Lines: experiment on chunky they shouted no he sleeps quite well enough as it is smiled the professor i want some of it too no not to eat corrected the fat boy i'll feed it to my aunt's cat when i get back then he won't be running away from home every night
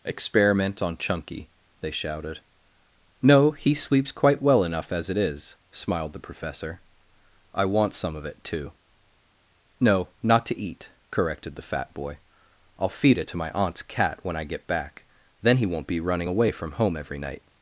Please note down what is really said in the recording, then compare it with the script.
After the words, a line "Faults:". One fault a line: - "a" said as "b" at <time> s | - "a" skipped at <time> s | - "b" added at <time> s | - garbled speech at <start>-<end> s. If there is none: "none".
experiment on chunky they shouted no he sleeps quite well enough as it is smiled the professor i want some of it too no not to eat corrected the fat boy i'll feed it to my aunt's cat when i get back then he won't be running away from home every night
Faults:
none